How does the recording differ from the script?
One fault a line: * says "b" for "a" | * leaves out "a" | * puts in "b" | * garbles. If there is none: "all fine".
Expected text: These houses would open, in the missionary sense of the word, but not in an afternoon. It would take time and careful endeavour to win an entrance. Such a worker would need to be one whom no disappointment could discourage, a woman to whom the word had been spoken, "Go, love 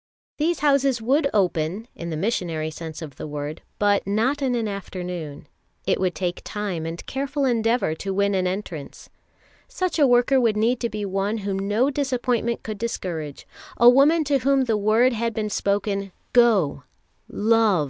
all fine